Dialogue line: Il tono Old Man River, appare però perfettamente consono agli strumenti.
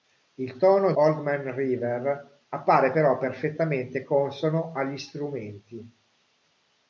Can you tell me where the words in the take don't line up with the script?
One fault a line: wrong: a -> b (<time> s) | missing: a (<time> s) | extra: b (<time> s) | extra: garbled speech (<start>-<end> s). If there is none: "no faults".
no faults